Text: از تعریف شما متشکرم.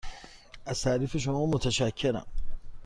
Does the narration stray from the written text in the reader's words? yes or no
no